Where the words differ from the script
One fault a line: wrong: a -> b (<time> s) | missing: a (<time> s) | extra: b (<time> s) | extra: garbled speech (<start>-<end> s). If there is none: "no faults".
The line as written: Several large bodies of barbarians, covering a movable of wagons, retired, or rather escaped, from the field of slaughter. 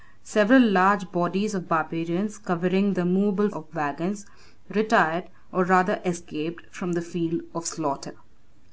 no faults